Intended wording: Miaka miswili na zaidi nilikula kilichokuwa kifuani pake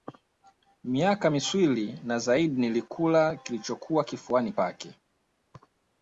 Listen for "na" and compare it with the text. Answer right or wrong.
right